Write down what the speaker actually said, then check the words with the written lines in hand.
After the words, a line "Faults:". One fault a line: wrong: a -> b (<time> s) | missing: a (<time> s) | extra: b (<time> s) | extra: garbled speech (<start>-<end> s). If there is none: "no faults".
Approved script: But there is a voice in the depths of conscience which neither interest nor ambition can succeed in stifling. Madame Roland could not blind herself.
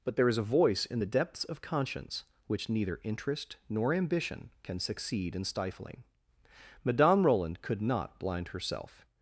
But there is a voice in the depths of conscience which neither interest nor ambition can succeed in stifling. Madame Roland could not blind herself.
Faults:
no faults